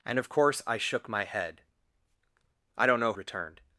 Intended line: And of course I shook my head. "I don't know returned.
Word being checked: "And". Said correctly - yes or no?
yes